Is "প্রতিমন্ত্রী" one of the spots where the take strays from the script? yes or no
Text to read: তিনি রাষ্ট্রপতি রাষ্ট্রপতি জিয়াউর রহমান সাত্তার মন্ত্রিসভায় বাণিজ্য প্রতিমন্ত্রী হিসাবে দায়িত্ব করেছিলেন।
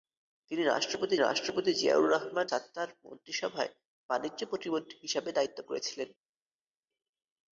no